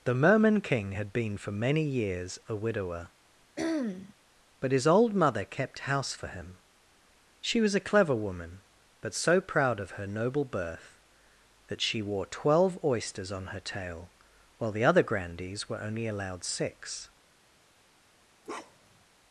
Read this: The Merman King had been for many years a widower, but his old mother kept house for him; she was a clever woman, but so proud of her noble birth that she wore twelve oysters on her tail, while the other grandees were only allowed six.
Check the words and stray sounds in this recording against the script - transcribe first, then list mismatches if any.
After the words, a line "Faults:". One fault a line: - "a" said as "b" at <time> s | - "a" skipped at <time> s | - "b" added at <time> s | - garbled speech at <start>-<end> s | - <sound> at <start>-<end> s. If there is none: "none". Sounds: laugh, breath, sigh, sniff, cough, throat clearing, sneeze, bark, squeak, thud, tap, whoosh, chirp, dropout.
The Merman King had been for many years a widower, but his old mother kept house for him; she was a clever woman, but so proud of her noble birth that she wore twelve oysters on her tail, while the other grandees were only allowed six.
Faults:
- throat clearing at 3.6-4.1 s
- bark at 18.4-19.0 s